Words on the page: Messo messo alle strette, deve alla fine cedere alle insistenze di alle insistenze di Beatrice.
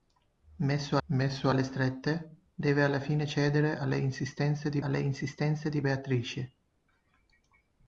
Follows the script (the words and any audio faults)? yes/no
yes